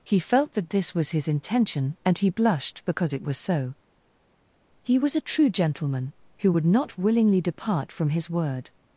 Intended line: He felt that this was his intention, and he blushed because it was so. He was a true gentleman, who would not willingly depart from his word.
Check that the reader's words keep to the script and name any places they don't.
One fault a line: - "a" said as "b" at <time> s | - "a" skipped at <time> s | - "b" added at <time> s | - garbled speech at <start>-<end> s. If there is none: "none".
none